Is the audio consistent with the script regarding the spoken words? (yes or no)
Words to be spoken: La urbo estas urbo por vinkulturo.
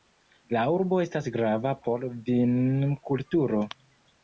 no